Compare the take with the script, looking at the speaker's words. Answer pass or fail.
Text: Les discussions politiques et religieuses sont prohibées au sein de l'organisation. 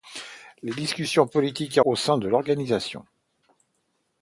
fail